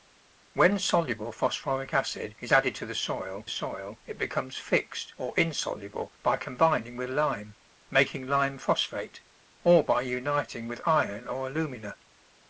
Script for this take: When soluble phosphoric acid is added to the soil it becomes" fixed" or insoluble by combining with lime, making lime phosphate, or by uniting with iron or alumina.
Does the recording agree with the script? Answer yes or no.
no